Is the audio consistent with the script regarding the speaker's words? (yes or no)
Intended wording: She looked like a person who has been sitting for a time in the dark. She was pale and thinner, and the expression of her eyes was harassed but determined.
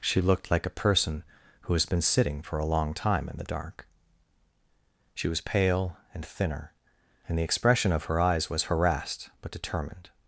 no